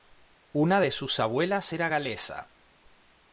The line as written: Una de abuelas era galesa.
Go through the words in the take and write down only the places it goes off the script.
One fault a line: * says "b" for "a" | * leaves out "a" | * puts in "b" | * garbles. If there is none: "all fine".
* puts in "sus"